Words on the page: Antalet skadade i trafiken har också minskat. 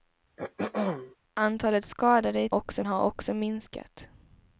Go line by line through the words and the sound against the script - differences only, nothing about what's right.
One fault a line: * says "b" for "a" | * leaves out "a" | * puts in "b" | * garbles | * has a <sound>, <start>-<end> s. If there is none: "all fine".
* has a throat clearing, 0.4-1.2 s
* says "också" for "trafiken"